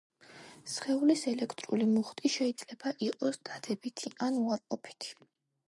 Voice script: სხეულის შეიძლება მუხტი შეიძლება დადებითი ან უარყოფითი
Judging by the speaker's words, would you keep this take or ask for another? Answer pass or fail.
fail